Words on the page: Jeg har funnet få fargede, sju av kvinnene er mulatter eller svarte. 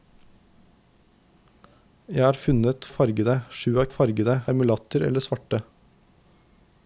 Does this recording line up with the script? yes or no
no